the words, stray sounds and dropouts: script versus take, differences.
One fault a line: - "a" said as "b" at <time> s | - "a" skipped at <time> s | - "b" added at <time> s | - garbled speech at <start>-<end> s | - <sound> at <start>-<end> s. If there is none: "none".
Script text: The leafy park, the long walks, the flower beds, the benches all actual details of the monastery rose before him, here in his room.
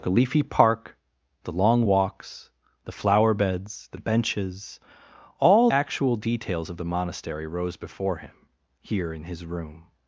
none